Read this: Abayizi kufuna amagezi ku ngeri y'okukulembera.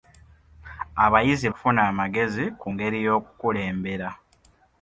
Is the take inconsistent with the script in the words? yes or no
no